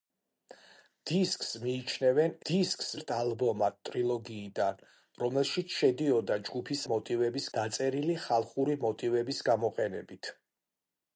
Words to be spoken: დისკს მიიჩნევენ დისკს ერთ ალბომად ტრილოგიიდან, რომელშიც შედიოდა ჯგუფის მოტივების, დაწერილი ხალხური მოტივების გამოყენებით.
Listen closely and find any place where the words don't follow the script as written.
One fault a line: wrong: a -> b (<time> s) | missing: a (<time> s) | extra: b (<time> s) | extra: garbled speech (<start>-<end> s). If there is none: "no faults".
no faults